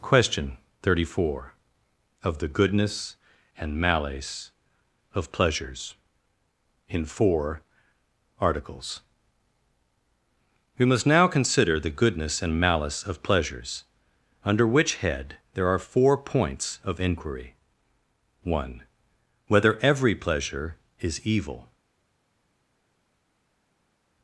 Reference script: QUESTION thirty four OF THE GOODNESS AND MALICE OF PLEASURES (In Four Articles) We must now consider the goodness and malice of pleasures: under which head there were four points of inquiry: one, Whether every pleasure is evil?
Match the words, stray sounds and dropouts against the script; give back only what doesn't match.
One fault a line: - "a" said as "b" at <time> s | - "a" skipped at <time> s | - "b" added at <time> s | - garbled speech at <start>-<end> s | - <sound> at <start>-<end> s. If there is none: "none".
- "were" said as "are" at 15.7 s